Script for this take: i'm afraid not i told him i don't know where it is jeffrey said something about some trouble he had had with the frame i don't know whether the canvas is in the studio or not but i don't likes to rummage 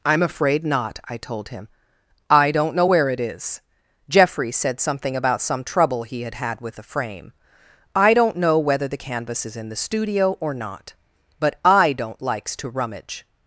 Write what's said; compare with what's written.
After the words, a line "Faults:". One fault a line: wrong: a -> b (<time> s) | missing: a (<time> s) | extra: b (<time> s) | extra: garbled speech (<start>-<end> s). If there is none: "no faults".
i'm afraid not i told him i don't know where it is jeffrey said something about some trouble he had had with the frame i don't know whether the canvas is in the studio or not but i don't likes to rummage
Faults:
no faults